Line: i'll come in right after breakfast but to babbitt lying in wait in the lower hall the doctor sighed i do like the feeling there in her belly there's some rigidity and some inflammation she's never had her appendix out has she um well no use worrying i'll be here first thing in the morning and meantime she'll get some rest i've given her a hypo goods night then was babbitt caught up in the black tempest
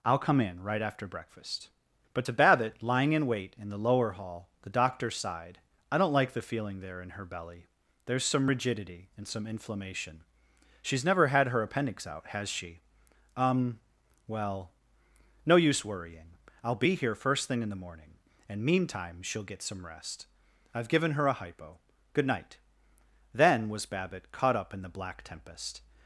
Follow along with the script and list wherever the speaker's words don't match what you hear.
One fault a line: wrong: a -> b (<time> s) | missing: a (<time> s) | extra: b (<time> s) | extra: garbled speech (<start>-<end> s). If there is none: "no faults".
wrong: do -> don't (6.0 s)
wrong: goods -> good (22.1 s)